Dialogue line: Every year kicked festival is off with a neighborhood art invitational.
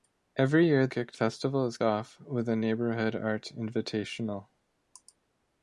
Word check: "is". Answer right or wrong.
right